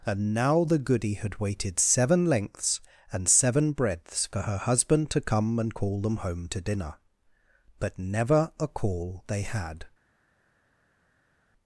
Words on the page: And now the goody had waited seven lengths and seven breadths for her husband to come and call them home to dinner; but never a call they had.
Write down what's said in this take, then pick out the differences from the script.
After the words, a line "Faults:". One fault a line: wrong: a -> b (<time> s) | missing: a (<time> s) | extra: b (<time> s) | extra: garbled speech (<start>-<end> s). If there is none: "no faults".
And now the goody had waited seven lengths and seven breadths for her husband to come and call them home to dinner; but never a call they had.
Faults:
no faults